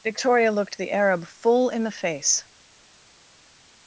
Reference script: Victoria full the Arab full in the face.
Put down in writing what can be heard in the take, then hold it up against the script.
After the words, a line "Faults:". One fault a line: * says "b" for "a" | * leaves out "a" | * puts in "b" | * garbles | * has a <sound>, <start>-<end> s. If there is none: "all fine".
Victoria looked the Arab full in the face.
Faults:
* says "looked" for "full"